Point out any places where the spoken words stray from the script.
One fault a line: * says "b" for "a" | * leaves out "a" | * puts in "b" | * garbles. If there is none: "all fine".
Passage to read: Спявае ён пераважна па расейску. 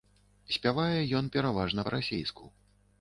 all fine